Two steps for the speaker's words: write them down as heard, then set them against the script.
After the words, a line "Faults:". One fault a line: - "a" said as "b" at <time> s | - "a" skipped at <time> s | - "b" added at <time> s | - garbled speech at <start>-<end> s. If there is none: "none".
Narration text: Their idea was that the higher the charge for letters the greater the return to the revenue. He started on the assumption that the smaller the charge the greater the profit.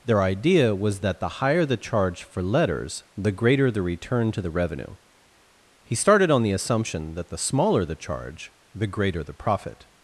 Their idea was that the higher the charge for letters the greater the return to the revenue. He started on the assumption that the smaller the charge the greater the profit.
Faults:
none